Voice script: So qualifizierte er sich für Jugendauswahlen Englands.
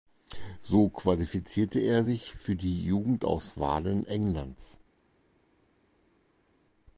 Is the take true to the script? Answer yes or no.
no